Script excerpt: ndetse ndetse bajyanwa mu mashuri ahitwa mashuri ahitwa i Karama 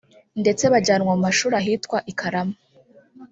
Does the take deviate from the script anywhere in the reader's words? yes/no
yes